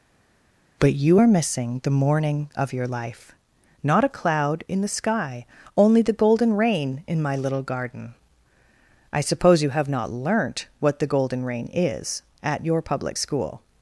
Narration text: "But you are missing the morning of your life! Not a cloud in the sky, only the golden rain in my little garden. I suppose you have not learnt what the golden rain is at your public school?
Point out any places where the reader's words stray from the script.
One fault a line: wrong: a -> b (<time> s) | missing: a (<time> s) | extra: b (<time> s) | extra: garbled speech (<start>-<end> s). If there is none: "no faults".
no faults